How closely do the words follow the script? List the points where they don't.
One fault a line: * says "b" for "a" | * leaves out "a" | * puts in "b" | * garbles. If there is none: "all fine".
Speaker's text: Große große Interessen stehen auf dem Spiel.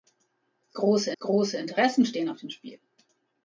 all fine